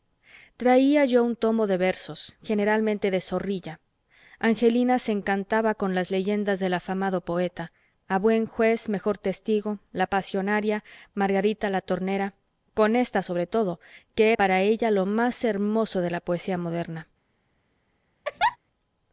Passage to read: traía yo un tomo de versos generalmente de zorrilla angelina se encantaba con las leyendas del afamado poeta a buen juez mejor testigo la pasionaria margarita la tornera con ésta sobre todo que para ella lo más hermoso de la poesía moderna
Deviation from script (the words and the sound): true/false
true